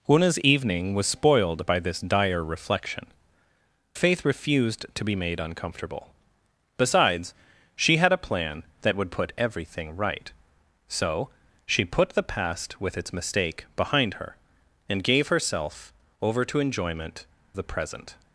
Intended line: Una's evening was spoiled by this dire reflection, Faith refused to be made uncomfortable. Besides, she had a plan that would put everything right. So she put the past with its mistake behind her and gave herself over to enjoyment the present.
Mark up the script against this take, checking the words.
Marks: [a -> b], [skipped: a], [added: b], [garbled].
Una's evening was spoiled by this dire reflection, Faith refused to be made uncomfortable. Besides, she had a plan that would put everything right. So she put the past with its mistake behind her and gave herself over to enjoyment the present.